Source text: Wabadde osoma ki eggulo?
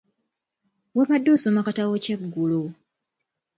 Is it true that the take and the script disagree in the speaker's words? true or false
true